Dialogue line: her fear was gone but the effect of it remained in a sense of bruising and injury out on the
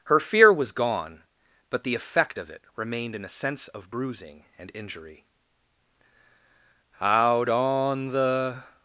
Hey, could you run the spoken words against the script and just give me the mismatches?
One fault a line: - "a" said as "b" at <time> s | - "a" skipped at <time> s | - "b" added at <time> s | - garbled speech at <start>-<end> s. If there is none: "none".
none